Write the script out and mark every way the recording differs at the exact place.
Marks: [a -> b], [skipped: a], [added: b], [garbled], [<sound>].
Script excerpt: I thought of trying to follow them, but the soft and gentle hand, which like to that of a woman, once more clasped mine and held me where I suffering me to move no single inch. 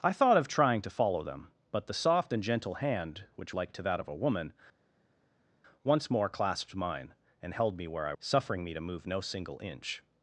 I thought of trying to follow them, but the soft and gentle hand, which like to that of a woman, once more clasped mine and held me where I suffering me to move no single inch.